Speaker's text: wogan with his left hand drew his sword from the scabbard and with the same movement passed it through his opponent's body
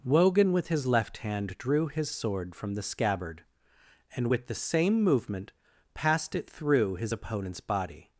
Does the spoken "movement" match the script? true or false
true